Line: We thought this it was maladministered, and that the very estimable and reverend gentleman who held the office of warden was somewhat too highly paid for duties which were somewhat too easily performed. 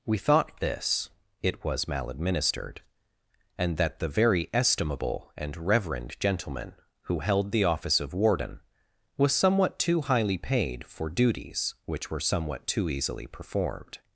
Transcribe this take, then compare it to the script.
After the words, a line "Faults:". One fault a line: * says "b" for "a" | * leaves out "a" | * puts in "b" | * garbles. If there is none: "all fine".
We thought this it was maladministered, and that the very estimable and reverend gentleman who held the office of warden was somewhat too highly paid for duties which were somewhat too easily performed.
Faults:
all fine